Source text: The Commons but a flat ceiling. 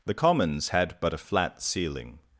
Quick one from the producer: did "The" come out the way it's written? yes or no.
yes